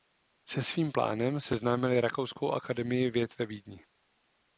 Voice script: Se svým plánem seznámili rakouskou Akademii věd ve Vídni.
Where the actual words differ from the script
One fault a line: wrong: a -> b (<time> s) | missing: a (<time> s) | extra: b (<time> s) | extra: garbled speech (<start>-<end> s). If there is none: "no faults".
no faults